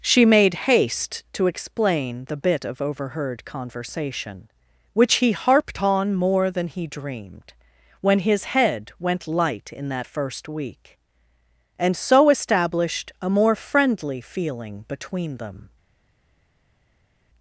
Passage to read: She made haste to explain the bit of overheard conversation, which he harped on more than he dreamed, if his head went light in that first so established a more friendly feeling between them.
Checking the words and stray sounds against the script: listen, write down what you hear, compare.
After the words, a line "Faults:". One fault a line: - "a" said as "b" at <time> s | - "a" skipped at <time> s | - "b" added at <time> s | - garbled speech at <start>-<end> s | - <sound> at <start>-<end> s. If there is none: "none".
She made haste to explain the bit of overheard conversation, which he harped on more than he dreamed, when his head went light in that first week, and so established a more friendly feeling between them.
Faults:
- "if" said as "when" at 8.0 s
- "week and" added at 10.5 s